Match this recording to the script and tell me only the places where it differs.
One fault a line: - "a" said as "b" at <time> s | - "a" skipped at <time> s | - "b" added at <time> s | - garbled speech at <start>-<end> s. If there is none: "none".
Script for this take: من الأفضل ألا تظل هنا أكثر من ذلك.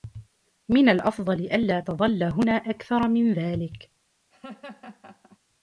none